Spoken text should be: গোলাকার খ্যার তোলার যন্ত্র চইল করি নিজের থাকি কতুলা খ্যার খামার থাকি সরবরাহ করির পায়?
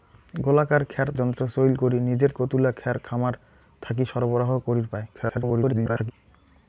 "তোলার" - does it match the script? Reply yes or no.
no